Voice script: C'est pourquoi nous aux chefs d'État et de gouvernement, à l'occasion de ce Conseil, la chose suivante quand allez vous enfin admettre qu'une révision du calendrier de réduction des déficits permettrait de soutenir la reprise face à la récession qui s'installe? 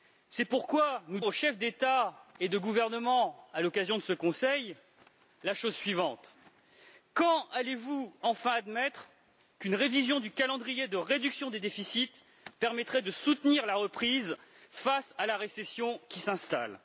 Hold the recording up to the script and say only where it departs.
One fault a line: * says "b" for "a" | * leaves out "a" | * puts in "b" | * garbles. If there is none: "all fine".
all fine